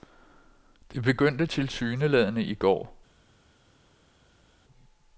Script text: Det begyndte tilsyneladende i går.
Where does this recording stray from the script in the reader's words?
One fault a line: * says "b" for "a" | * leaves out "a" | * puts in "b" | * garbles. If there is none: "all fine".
all fine